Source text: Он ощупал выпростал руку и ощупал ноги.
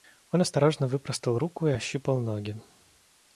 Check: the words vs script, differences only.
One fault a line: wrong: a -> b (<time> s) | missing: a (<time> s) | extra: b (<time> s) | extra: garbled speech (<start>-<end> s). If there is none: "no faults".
wrong: ощупал -> осторожно (0.4 s)